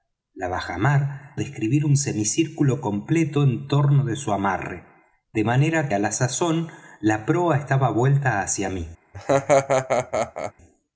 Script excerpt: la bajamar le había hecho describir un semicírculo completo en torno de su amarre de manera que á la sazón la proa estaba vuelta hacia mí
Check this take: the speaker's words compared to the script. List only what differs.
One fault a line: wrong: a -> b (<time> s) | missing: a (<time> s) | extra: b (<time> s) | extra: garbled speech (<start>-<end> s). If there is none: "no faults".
missing: le había hecho (1.4 s)
missing: que (5.9 s)